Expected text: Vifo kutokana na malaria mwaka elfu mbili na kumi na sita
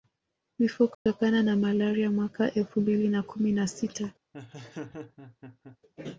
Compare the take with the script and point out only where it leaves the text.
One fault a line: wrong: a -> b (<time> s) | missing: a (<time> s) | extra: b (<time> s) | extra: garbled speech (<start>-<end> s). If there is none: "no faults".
no faults